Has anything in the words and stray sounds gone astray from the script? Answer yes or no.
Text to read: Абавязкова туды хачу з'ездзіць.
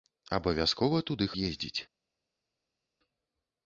yes